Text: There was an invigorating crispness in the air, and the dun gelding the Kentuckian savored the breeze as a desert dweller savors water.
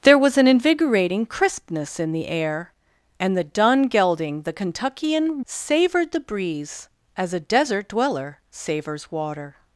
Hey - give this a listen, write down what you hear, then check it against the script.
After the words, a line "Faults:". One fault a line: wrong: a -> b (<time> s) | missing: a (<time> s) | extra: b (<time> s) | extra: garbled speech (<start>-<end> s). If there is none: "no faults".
There was an invigorating crispness in the air, and the dun gelding the Kentuckian savored the breeze as a desert dweller savors water.
Faults:
no faults